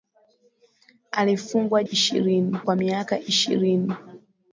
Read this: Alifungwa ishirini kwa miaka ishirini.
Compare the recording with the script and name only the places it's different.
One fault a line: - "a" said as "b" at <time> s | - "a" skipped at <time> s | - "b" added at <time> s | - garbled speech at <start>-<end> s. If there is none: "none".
none